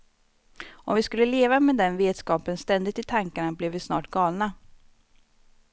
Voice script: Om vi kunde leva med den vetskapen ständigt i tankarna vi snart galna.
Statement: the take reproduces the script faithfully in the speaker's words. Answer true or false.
false